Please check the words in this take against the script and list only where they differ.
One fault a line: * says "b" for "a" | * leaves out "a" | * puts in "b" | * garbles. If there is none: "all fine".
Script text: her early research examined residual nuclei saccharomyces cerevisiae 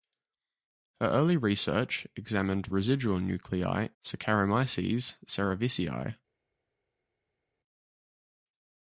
all fine